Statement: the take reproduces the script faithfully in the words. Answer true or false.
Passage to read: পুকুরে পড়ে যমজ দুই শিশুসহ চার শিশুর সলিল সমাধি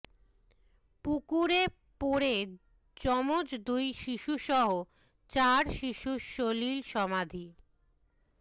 true